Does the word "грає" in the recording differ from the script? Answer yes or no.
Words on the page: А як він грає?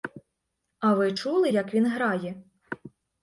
no